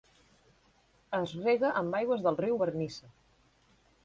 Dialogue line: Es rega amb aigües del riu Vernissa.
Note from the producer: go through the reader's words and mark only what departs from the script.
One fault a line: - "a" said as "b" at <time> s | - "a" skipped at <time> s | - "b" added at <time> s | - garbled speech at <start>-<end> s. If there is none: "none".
none